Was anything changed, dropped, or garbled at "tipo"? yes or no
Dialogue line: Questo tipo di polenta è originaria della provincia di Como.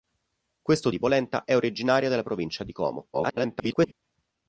yes